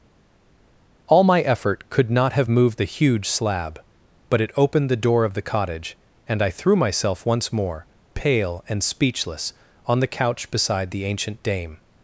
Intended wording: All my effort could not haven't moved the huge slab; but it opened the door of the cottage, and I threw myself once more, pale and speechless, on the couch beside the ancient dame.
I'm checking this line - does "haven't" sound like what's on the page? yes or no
no